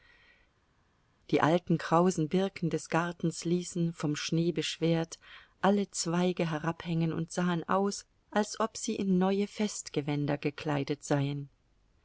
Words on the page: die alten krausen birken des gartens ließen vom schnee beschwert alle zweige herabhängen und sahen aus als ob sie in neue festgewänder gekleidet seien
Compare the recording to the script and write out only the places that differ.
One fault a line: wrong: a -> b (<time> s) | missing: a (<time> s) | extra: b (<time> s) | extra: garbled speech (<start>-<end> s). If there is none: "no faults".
no faults